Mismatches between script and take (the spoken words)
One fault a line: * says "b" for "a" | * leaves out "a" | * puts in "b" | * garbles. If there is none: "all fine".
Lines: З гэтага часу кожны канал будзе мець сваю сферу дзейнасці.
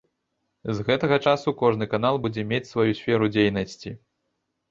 all fine